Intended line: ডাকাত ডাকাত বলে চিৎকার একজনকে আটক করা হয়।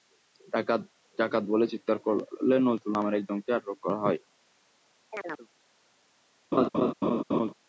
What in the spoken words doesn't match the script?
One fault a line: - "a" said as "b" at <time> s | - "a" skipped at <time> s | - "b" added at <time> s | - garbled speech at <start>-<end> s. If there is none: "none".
- "করলে নজরুল নামের" added at 2.1 s